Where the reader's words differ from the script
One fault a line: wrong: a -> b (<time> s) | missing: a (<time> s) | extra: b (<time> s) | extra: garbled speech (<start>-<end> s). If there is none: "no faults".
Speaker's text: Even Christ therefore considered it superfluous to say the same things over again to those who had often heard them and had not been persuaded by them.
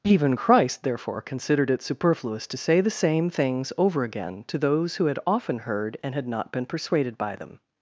missing: them (6.0 s)